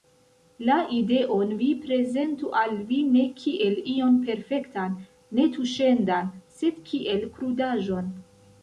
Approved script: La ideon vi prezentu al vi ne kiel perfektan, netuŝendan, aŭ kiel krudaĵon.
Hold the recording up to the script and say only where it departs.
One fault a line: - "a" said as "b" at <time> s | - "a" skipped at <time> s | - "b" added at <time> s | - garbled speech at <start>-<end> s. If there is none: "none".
- "ion" added at 4.0 s
- "aŭ" said as "sed" at 6.6 s